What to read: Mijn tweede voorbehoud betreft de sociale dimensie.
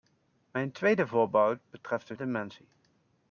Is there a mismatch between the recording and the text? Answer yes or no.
yes